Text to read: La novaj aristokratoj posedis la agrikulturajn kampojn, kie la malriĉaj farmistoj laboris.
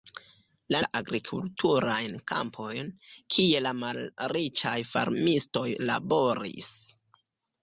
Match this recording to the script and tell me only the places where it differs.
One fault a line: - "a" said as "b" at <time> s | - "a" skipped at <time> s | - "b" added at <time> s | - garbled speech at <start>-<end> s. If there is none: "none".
- "novaj aristokratoj posedis" skipped at 0.8 s